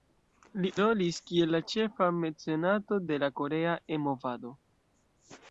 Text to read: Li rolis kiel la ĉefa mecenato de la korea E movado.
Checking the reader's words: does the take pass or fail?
pass